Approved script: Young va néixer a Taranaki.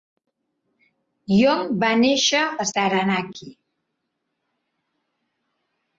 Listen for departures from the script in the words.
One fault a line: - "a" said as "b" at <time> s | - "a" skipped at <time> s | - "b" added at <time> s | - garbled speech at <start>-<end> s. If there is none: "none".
none